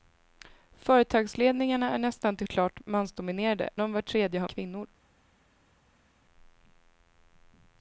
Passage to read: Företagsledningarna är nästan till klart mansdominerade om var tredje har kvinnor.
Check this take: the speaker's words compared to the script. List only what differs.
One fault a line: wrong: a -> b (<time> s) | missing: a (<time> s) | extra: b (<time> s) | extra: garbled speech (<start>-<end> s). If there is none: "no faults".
no faults